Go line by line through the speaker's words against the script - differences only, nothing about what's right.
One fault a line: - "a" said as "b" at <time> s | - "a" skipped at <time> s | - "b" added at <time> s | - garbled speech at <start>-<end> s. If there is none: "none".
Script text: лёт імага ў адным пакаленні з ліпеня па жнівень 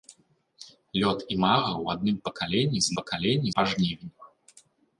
- "ліпеня" said as "пакаленні" at 3.0 s